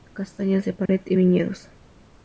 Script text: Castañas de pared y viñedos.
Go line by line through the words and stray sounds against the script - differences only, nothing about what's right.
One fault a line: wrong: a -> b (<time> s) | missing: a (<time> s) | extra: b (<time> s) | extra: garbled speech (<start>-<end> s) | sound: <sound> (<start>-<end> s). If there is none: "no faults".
sound: dropout (0.9-0.9 s)